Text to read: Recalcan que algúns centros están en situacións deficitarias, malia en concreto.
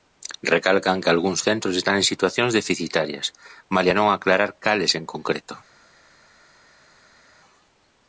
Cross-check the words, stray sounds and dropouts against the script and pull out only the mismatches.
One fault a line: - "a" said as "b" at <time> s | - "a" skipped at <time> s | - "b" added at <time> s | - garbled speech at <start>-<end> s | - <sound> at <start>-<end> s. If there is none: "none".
- "non aclarar cales" added at 4.0 s